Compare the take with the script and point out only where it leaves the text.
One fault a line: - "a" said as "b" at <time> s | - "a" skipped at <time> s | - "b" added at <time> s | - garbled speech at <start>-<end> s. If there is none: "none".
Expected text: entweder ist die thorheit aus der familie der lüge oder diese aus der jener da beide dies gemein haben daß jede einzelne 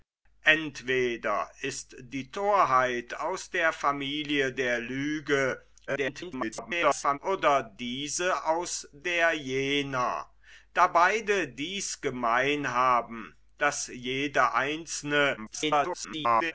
- garbled speech at 5.9-7.2 s
- garbled speech at 15.4-16.5 s